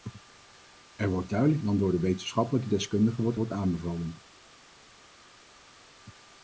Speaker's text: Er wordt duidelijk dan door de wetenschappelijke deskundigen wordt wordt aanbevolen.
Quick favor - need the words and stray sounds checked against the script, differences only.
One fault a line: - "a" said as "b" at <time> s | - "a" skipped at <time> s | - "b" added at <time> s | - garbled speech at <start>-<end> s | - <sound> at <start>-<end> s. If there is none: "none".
none